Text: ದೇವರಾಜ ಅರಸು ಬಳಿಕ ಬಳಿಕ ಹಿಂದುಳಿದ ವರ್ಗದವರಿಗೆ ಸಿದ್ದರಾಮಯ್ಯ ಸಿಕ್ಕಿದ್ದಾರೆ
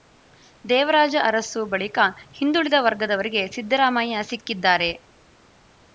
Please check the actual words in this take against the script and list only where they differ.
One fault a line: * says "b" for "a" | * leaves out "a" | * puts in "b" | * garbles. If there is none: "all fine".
* leaves out "ಬಳಿಕ"